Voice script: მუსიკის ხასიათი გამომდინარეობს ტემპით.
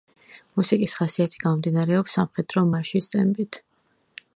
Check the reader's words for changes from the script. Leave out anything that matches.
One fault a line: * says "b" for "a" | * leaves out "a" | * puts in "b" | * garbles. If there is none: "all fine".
* puts in "სამხედრო მარშის"